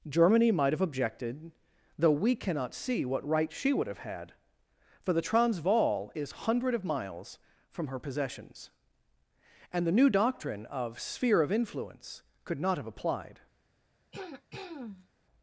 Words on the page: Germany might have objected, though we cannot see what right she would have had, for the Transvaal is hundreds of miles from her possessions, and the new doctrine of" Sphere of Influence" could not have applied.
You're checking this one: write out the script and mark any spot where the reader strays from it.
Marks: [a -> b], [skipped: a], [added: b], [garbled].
Germany might have objected, though we cannot see what right she would have had, for the Transvaal is [hundreds -> hundred] of miles from her possessions, and the new doctrine of" Sphere of Influence" could not have applied.